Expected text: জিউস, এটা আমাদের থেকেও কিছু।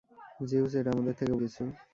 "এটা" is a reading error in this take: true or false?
false